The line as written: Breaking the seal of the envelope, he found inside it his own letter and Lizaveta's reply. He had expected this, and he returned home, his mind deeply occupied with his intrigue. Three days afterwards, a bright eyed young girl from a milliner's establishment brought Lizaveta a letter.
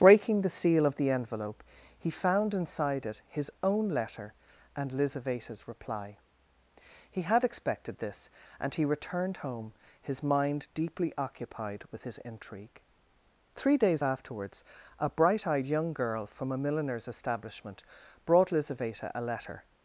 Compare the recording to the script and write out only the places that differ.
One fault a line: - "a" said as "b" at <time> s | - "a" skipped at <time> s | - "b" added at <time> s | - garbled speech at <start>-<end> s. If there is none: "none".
none